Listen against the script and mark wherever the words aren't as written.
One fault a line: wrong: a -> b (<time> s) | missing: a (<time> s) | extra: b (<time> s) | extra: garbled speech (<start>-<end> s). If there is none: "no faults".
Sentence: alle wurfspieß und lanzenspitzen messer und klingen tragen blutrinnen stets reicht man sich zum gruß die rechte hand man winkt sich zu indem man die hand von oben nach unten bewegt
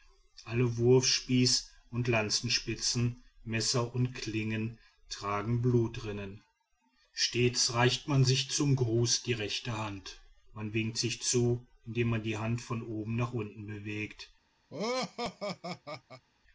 no faults